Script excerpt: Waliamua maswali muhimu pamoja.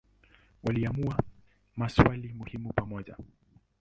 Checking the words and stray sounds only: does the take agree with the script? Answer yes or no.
yes